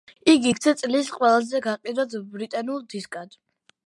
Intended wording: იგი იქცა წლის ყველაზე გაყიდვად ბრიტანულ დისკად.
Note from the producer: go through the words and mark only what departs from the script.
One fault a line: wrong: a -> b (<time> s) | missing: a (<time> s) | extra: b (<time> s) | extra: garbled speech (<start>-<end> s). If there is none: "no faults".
no faults